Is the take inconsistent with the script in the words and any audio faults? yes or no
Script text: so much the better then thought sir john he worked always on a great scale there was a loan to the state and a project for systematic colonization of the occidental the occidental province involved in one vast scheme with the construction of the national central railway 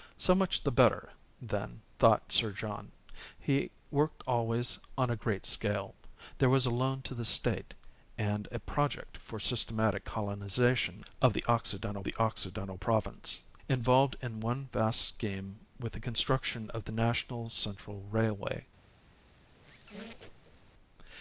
yes